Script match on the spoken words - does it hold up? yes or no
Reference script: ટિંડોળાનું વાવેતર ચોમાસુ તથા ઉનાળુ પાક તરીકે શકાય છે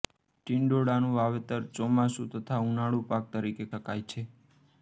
yes